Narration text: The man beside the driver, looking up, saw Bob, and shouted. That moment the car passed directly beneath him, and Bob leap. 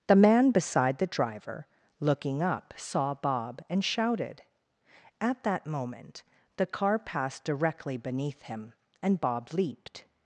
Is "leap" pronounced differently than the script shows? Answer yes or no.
yes